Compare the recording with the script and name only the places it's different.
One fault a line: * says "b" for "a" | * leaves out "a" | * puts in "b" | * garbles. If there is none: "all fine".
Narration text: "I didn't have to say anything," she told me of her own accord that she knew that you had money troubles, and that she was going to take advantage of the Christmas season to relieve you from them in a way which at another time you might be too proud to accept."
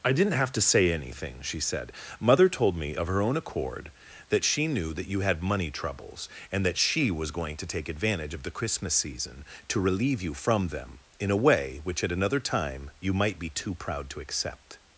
* puts in "said Mother"